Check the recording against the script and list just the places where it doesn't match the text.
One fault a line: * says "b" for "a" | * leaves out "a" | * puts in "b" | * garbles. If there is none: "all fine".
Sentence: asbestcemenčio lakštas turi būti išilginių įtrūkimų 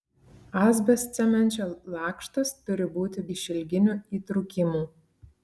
all fine